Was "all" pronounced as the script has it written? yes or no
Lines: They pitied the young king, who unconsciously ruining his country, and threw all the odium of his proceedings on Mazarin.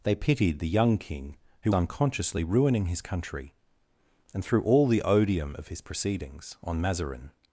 yes